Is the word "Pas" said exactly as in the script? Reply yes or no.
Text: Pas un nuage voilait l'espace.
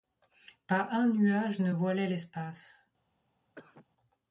yes